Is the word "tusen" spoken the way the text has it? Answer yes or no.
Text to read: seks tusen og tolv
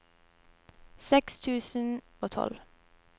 yes